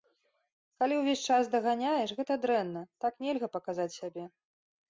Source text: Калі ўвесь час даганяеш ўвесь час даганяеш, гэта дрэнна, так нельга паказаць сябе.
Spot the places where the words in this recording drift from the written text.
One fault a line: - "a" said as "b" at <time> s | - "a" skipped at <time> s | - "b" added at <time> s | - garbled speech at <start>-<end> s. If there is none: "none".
- "ўвесь час даганяеш" skipped at 2.1 s